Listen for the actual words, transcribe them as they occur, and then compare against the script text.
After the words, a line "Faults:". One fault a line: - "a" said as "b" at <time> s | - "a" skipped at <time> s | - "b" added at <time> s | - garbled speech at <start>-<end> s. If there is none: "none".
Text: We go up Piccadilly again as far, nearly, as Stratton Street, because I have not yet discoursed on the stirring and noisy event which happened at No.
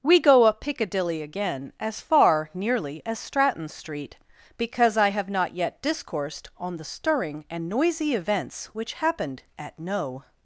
We go up Piccadilly again as far, nearly, as Stratton Street, because I have not yet discoursed on the stirring and noisy events which happened at No.
Faults:
- "event" said as "events" at 8.2 s